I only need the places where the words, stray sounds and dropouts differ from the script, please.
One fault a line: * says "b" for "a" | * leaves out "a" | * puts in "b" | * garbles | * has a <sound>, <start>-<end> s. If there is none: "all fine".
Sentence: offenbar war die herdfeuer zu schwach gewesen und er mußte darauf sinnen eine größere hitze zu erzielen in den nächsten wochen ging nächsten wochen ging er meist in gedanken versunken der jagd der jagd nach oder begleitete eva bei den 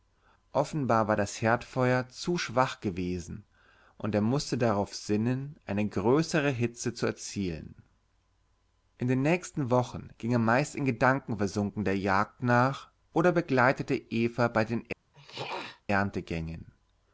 * says "das" for "die"
* leaves out "nächsten wochen ging"
* leaves out "der jagd"
* has a throat clearing, 15.1-15.8 s